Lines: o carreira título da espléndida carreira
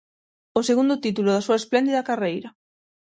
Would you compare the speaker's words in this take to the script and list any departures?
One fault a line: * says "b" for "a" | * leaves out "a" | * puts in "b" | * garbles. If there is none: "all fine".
* says "segundo" for "carreira"
* puts in "súa"